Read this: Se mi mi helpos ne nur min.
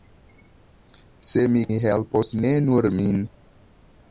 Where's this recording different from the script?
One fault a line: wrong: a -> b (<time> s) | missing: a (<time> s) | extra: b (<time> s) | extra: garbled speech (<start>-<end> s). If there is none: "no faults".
no faults